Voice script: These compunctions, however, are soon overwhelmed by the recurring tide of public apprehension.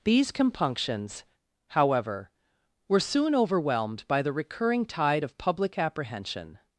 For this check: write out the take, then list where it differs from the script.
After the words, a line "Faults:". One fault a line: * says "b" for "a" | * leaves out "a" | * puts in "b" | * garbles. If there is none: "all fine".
These compunctions, however, were soon overwhelmed by the recurring tide of public apprehension.
Faults:
* says "were" for "are"